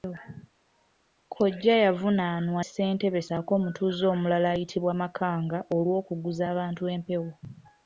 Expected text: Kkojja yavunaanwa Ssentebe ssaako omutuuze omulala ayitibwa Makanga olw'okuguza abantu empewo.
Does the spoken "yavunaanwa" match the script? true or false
true